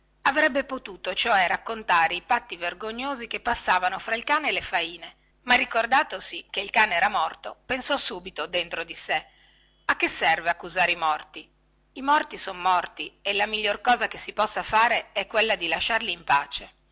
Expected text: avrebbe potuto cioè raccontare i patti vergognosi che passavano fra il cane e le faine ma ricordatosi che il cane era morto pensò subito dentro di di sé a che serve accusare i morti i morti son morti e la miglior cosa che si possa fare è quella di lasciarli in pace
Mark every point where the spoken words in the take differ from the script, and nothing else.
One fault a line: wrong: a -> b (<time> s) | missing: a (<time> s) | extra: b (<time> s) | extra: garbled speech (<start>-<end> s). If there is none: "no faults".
missing: di (8.9 s)